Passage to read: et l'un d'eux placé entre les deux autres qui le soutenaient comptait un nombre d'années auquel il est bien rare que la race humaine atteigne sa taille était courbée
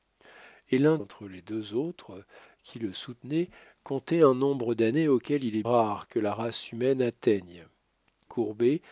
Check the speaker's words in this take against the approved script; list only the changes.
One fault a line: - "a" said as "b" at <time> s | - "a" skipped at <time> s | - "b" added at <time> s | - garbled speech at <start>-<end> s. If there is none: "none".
- "d'eux placé" skipped at 1.0 s
- "bien" skipped at 5.6 s
- "sa taille était" skipped at 7.7 s